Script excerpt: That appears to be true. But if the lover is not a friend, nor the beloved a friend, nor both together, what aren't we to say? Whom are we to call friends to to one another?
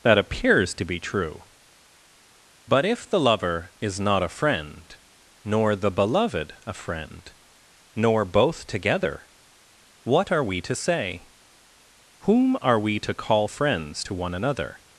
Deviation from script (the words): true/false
true